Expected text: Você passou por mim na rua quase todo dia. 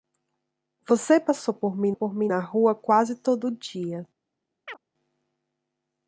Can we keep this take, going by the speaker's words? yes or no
no